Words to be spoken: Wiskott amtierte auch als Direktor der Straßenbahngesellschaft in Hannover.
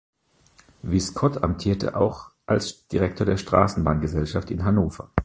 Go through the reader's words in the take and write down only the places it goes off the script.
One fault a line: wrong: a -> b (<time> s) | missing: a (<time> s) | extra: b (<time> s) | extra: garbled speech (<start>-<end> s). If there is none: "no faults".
no faults